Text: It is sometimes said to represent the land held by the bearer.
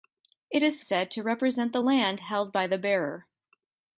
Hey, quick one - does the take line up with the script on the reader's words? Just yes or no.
no